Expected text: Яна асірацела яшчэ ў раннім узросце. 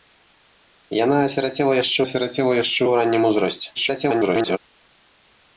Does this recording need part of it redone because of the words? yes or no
yes